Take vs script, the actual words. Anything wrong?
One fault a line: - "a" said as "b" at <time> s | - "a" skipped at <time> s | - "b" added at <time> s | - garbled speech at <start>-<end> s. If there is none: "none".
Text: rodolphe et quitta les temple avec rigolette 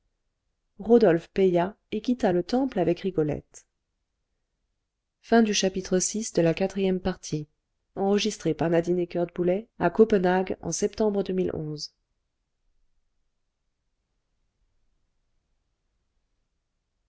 - "paya" added at 1.3 s
- "les" said as "le" at 2.3 s